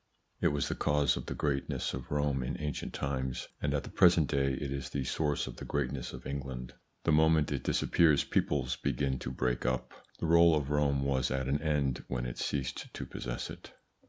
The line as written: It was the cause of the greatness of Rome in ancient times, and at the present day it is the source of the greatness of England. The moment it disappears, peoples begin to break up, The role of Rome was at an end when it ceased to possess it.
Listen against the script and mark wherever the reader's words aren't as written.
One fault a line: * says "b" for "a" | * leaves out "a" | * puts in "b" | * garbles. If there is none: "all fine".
all fine